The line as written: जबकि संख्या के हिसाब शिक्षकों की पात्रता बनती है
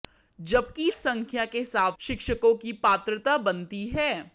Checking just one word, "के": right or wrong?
right